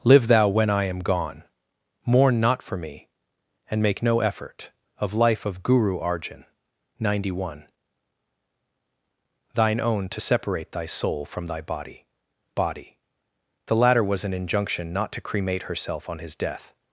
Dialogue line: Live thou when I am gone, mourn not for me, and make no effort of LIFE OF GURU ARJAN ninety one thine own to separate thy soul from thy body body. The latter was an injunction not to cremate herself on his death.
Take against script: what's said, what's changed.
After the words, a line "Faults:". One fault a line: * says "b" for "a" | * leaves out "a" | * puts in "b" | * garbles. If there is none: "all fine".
Live thou when I am gone, mourn not for me, and make no effort of LIFE OF GURU ARJAN ninety one thine own to separate thy soul from thy body body. The latter was an injunction not to cremate herself on his death.
Faults:
all fine